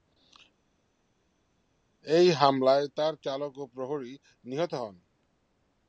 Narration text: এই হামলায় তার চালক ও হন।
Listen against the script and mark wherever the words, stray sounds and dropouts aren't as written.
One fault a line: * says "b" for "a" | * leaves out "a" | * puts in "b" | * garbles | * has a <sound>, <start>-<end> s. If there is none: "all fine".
* puts in "প্রহরী নিহত"